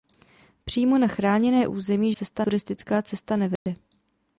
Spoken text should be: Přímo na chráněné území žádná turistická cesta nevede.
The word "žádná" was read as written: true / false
false